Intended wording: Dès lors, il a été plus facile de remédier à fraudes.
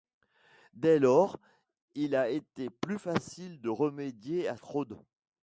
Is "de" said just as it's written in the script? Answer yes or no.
yes